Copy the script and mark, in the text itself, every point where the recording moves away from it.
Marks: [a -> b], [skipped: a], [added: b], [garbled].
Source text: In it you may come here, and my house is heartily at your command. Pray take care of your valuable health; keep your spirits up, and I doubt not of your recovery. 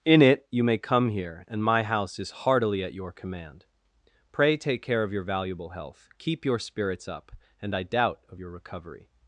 In it you may come here, and my house is heartily at your command. Pray take care of your valuable health; keep your spirits up, and I doubt [skipped: not] of your recovery.